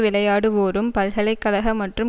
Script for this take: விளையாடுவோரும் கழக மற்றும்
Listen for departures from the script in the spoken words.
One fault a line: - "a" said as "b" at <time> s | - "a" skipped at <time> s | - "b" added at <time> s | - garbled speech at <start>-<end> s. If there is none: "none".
- "பல்கலை" added at 0.9 s